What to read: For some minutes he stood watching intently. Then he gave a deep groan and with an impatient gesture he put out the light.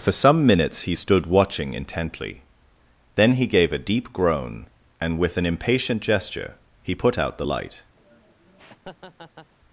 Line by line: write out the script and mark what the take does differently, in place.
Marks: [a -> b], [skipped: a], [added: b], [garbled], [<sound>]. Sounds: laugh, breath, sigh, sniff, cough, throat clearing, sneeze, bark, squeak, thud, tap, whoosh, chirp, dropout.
For some minutes he stood watching intently. Then he gave a deep groan and with an impatient gesture he put out the light. [laugh]